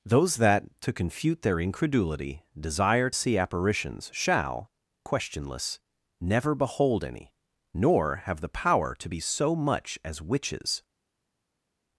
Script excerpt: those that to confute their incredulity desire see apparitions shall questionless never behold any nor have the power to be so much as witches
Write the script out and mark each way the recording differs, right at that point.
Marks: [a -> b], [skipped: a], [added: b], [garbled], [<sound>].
those that to confute their incredulity desire see apparitions shall questionless never behold any nor have the power to be so much as witches